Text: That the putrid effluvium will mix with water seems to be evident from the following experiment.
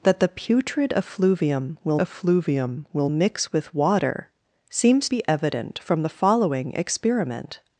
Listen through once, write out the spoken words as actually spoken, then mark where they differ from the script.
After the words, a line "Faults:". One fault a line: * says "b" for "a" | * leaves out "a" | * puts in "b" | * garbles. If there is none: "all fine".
That the putrid effluvium will effluvium will mix with water seems be evident from the following experiment.
Faults:
* puts in "effluvium will"
* leaves out "to"